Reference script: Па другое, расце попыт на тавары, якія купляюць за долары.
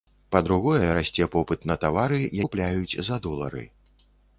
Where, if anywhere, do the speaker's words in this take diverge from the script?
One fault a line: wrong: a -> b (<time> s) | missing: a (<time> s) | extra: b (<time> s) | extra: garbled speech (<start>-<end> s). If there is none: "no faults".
missing: якія (2.2 s)